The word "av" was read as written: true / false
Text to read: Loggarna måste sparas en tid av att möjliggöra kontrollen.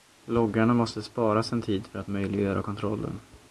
false